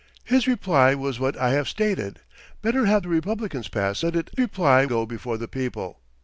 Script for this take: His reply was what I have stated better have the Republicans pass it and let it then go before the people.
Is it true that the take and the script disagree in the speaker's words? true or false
true